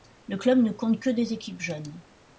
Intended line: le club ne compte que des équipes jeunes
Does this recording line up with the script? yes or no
yes